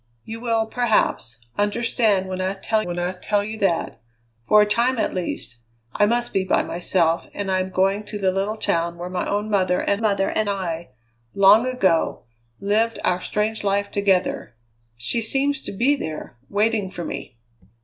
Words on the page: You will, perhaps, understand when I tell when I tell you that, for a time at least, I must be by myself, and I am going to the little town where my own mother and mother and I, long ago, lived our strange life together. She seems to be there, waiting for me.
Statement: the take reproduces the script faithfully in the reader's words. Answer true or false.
true